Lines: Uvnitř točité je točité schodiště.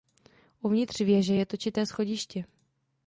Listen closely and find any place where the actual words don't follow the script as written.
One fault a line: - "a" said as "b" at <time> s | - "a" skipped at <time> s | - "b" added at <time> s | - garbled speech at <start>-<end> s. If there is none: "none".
- "točité" said as "věže" at 1.0 s